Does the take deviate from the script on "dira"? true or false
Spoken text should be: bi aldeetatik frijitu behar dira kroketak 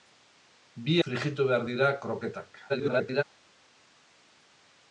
false